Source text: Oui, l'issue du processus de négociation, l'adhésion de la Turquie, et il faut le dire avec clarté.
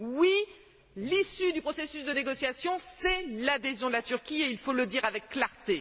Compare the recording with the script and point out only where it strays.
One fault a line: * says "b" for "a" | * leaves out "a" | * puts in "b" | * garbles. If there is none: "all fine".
* puts in "c'est"